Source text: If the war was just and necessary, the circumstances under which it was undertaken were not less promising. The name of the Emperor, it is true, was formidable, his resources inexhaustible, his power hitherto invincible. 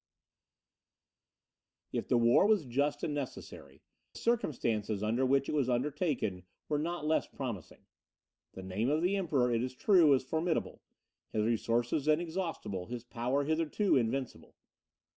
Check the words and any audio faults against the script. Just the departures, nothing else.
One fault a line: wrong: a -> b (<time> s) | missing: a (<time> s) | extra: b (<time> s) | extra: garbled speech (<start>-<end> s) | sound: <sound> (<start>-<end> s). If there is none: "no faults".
missing: the (3.8 s)